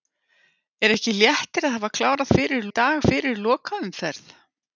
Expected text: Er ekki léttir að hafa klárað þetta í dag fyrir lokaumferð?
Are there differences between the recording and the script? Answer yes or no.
yes